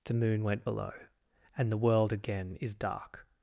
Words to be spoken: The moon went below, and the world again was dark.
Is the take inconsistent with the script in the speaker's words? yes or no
yes